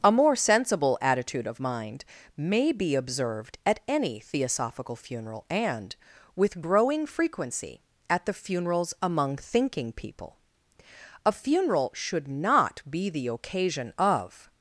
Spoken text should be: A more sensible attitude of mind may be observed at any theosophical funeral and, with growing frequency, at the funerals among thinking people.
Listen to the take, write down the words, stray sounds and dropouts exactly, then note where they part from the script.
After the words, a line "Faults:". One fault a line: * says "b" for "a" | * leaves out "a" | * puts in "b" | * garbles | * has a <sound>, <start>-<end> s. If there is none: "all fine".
A more sensible attitude of mind may be observed at any theosophical funeral and, with growing frequency, at the funerals among thinking people. A funeral should not be the occasion of
Faults:
* puts in "A funeral should not be the occasion of"